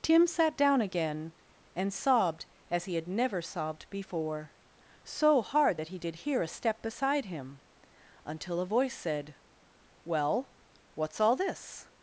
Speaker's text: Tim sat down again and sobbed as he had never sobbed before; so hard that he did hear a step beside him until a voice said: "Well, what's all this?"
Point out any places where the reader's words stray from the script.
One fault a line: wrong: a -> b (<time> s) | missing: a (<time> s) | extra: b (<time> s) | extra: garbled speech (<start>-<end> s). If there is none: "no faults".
no faults